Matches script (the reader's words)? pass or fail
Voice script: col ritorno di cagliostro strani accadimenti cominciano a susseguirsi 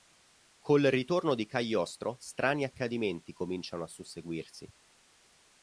pass